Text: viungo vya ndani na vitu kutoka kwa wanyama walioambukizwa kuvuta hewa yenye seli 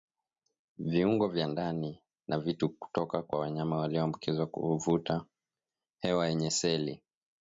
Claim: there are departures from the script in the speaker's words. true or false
false